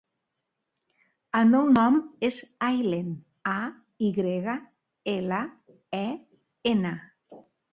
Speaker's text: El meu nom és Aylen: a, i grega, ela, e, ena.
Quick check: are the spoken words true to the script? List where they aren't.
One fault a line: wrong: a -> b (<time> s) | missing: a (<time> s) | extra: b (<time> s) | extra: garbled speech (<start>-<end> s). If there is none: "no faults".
no faults